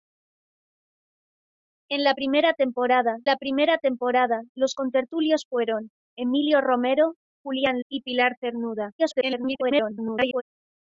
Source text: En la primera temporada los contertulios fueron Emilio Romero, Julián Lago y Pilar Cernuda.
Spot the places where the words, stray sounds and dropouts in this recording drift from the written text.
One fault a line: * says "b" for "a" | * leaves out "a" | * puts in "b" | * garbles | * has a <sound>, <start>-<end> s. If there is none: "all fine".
* puts in "la primera temporada"
* leaves out "Lago"
* garbles